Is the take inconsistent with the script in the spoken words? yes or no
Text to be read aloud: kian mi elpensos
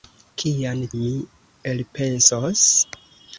no